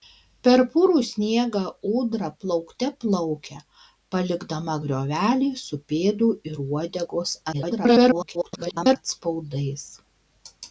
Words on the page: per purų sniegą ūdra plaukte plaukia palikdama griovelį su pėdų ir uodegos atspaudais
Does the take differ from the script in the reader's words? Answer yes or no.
yes